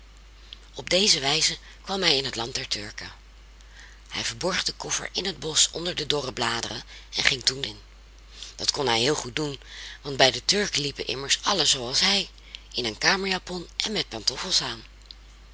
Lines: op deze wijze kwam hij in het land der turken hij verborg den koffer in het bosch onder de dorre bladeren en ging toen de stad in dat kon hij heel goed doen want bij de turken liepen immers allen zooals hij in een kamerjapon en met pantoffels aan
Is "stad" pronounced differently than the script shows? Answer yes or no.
yes